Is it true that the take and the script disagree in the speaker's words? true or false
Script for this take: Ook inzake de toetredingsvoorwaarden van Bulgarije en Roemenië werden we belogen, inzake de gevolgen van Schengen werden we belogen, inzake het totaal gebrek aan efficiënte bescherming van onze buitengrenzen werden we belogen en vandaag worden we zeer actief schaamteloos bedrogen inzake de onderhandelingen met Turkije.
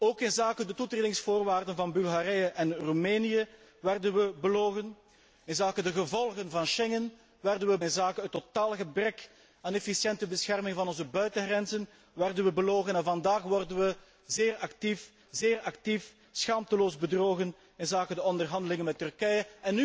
true